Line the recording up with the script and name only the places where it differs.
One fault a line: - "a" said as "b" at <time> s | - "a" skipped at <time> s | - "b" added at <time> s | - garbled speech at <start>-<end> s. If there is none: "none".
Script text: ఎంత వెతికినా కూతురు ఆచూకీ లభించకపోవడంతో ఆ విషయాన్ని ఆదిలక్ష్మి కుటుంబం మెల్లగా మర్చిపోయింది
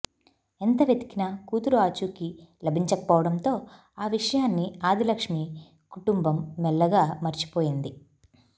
none